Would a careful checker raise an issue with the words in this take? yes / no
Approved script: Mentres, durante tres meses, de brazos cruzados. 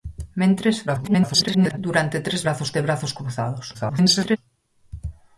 yes